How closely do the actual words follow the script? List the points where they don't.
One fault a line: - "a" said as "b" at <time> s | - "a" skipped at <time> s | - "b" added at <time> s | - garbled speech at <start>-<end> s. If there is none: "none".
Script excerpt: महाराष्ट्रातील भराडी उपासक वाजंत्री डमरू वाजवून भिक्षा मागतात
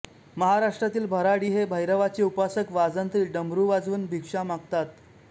- "हे भैरवाचे" added at 1.5 s